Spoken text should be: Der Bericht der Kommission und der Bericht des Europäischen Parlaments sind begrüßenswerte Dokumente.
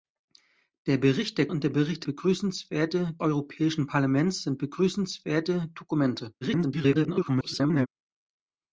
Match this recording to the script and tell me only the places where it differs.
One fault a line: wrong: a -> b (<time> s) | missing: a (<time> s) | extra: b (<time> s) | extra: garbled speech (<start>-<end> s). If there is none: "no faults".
missing: Kommission (1.5 s)
wrong: des -> begrüßenswerte (2.0 s)
extra: garbled speech (6.4-7.9 s)